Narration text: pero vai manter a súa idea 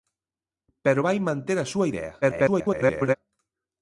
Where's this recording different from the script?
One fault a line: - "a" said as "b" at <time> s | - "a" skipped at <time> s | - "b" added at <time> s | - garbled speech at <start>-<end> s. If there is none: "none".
- garbled speech at 2.2-3.1 s